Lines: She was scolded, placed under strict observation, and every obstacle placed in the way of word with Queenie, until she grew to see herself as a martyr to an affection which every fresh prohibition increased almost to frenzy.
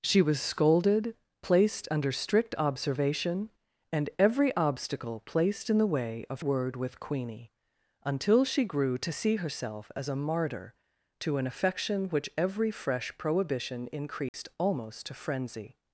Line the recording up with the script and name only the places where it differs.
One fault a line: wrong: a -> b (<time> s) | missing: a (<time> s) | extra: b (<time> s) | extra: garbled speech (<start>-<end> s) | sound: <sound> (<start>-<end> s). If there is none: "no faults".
sound: dropout (14.3-14.3 s)